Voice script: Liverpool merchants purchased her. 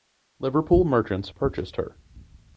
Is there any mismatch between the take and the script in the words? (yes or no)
no